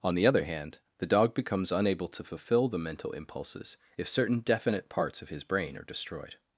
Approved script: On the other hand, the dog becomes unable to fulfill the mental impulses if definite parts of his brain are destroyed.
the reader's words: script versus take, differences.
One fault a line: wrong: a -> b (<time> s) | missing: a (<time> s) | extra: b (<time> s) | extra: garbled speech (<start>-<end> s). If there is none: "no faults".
extra: certain (4.1 s)